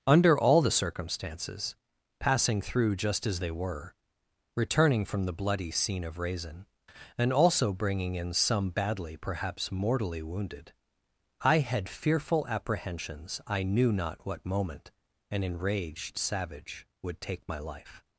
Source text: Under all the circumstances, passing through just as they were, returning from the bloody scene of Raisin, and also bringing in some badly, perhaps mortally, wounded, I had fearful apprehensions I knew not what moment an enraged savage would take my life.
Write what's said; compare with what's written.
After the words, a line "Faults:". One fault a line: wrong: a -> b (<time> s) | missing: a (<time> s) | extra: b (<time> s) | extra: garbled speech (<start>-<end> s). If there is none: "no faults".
Under all the circumstances, passing through just as they were, returning from the bloody scene of Raisin, and also bringing in some badly, perhaps mortally, wounded, I had fearful apprehensions I knew not what moment an enraged savage would take my life.
Faults:
no faults